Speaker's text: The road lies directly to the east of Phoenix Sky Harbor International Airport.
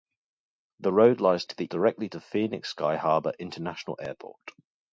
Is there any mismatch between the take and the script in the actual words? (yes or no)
yes